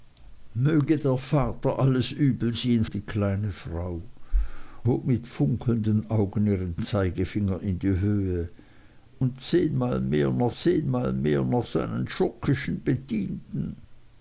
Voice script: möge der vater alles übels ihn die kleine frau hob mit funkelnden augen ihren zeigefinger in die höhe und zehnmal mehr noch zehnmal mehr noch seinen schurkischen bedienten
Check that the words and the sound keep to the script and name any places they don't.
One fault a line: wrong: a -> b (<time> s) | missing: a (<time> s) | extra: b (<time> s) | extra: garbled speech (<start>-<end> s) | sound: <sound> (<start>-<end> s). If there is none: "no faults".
no faults